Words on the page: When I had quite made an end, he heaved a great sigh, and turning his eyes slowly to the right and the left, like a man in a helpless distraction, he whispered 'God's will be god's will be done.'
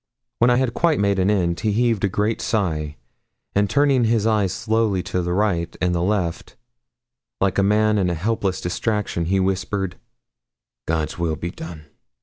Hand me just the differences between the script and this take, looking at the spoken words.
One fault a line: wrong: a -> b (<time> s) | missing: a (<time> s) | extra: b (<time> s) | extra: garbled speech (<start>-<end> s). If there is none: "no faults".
missing: god's will be (11.5 s)